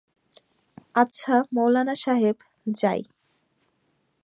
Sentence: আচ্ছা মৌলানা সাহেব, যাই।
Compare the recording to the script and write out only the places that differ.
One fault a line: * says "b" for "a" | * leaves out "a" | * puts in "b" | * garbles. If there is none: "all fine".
all fine